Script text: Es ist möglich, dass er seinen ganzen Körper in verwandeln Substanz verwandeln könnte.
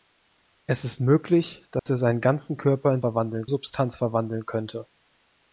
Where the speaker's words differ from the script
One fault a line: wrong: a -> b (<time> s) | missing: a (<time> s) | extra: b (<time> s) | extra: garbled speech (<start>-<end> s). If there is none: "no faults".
no faults